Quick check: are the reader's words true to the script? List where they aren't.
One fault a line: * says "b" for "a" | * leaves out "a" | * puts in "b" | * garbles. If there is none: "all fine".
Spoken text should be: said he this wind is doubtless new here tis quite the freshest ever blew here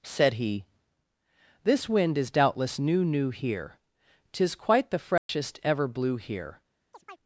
* puts in "new"